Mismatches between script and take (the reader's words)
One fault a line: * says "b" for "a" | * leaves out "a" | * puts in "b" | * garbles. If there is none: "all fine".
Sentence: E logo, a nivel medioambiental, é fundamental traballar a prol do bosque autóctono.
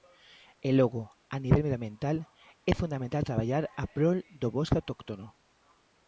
all fine